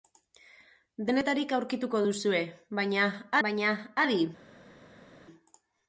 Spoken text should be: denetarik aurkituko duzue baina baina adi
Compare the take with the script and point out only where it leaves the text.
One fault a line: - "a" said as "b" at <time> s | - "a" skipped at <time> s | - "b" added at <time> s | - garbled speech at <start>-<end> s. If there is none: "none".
none